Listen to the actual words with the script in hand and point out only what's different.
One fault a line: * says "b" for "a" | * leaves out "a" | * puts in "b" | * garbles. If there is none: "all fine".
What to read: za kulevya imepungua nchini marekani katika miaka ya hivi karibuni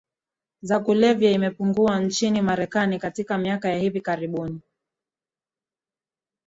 all fine